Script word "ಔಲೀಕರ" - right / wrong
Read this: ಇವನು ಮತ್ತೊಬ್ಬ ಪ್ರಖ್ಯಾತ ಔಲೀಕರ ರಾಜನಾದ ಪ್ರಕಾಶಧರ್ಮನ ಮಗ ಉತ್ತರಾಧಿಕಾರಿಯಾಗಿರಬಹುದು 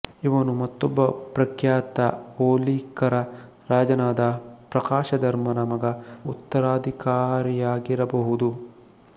right